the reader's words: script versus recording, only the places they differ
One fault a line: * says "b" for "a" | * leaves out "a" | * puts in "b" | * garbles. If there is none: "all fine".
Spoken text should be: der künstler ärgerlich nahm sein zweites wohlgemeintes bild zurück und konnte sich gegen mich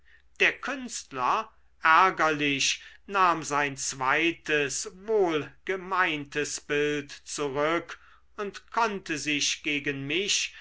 all fine